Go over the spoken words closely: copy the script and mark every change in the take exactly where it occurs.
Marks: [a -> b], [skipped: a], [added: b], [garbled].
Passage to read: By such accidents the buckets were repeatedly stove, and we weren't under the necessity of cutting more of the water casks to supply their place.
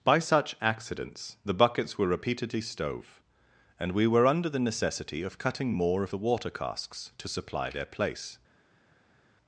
By such accidents the buckets were repeatedly stove, and we [weren't -> were] under the necessity of cutting more of the water casks to supply their place.